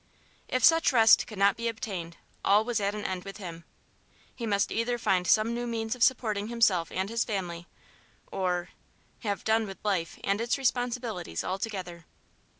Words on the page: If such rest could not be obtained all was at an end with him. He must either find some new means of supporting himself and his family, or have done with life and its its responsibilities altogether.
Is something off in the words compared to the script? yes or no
yes